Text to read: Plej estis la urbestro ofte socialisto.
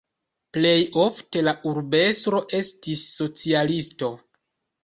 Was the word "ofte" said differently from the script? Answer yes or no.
yes